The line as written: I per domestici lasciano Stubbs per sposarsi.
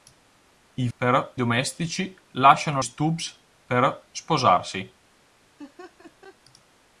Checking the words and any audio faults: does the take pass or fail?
fail